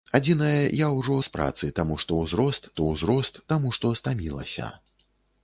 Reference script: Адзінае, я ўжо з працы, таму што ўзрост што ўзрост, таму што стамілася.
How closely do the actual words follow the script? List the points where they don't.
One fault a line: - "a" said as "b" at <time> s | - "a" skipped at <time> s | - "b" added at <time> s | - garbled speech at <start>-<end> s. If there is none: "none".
none